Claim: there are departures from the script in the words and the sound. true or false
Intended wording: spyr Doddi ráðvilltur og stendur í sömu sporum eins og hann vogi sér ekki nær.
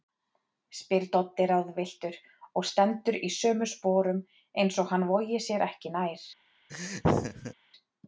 true